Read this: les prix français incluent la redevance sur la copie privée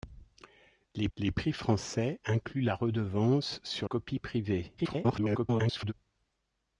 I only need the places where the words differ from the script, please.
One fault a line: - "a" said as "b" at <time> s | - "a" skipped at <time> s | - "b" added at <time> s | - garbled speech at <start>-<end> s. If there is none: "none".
- "les" added at 1.2 s
- "la" skipped at 3.9 s
- garbled speech at 4.8-5.9 s